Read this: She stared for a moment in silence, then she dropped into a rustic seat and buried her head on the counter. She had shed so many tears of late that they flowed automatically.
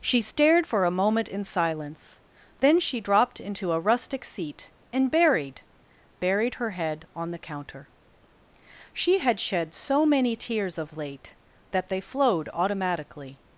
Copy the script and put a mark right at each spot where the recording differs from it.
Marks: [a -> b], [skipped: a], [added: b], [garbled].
She stared for a moment in silence, then she dropped into a rustic seat and buried [added: buried] her head on the counter. She had shed so many tears of late that they flowed automatically.